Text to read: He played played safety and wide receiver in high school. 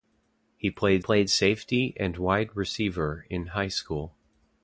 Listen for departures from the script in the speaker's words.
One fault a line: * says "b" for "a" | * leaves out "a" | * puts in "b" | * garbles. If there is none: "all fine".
all fine